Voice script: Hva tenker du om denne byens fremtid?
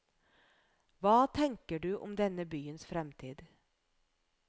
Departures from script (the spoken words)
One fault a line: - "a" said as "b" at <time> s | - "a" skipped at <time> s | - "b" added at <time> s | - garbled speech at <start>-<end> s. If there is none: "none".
none